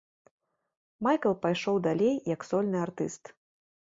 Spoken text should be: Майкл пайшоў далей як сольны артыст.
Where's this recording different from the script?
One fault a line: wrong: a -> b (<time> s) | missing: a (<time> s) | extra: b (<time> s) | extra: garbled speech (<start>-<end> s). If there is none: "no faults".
no faults